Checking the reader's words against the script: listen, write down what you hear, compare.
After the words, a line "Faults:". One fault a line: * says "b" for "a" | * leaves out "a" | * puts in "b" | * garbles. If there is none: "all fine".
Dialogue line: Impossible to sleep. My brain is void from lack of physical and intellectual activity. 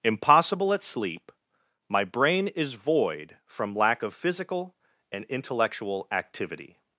Impossible at sleep. My brain is void from lack of physical and intellectual activity.
Faults:
* says "at" for "to"